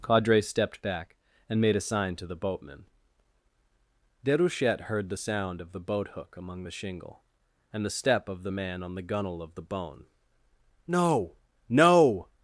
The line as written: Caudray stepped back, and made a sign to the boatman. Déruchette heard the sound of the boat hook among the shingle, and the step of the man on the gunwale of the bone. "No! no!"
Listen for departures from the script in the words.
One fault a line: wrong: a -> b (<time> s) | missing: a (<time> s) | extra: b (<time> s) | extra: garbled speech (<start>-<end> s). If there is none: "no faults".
no faults